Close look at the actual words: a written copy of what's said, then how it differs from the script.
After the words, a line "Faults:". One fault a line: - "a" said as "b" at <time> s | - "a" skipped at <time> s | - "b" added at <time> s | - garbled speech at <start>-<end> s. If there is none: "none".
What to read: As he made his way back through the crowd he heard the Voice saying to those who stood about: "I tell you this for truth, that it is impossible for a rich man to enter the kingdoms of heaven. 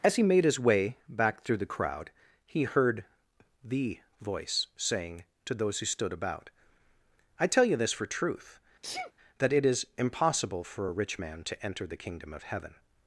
As he made his way back through the crowd he heard the Voice saying to those who stood about: "I tell you this for truth, that it is impossible for a rich man to enter the kingdom of heaven.
Faults:
- "kingdoms" said as "kingdom" at 12.0 s